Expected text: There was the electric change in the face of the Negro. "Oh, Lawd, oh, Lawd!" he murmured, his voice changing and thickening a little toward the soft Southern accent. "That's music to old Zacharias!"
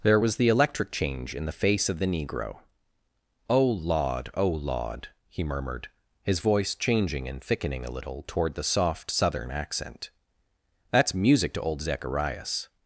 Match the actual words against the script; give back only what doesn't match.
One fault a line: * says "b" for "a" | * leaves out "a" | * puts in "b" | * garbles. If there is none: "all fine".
all fine